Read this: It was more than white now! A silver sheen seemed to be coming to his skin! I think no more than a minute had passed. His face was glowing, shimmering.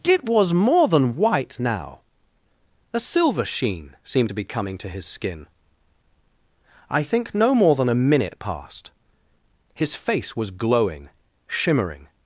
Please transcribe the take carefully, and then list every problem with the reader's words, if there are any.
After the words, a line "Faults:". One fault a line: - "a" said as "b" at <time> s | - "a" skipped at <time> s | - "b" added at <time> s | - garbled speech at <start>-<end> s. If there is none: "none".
It was more than white now! A silver sheen seemed to be coming to his skin! I think no more than a minute passed. His face was glowing, shimmering.
Faults:
- "had" skipped at 8.4 s